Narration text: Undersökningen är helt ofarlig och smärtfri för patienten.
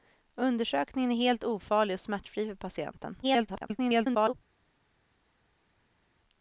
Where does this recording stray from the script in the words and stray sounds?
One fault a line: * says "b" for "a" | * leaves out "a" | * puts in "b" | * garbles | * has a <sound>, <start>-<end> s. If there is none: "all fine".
* garbles